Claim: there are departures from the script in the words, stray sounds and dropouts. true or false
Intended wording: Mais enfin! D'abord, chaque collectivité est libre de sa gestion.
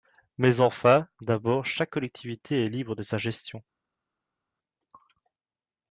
false